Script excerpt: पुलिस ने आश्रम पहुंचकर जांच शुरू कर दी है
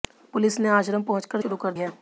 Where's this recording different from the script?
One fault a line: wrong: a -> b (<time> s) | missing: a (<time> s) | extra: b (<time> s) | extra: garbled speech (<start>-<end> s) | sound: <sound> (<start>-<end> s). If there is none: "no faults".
missing: जांच (1.4 s)
missing: दी (1.7 s)